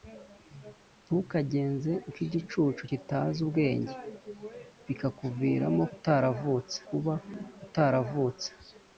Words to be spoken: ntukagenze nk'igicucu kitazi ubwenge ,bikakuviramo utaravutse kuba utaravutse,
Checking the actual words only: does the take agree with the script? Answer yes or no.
yes